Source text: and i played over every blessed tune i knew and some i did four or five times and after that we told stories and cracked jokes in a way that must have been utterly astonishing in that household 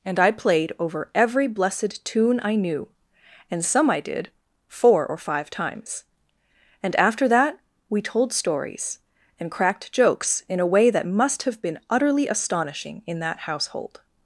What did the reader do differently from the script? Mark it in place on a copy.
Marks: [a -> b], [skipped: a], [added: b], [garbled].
and i played over every blessed tune i knew and some i did four or five times and after that we told stories and cracked jokes in a way that must have been utterly astonishing in that household